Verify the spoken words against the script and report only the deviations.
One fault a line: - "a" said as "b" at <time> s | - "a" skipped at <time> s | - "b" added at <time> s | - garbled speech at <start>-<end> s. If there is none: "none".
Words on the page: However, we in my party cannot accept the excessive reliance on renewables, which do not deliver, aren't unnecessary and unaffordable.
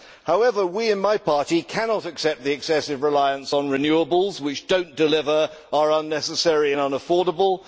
- "aren't" said as "are" at 5.7 s